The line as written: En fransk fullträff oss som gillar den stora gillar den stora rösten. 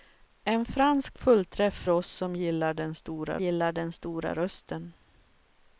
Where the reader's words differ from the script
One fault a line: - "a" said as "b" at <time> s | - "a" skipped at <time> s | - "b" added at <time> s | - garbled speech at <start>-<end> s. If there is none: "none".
none